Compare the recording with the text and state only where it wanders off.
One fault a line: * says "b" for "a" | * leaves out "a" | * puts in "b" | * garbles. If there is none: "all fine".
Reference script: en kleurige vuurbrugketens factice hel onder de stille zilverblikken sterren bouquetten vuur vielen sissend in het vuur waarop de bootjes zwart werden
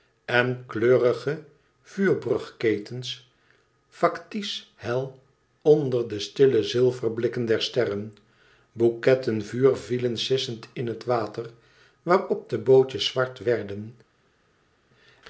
* puts in "der"
* says "water" for "vuur"